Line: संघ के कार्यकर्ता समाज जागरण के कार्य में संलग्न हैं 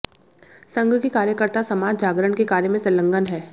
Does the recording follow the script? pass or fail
pass